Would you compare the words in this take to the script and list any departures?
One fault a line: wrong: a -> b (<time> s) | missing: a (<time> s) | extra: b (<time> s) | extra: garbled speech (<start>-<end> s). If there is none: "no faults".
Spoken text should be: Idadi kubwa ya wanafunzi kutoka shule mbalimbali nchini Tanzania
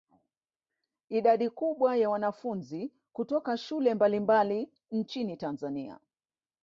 no faults